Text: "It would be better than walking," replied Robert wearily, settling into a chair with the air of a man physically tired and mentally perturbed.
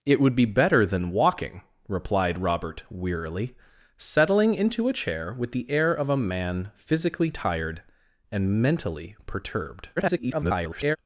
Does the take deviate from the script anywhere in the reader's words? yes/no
yes